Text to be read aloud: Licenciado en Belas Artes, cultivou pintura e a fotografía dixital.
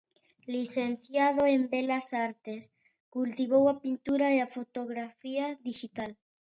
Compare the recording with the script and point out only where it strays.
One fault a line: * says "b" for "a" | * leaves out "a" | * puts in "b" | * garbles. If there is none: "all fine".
* puts in "a"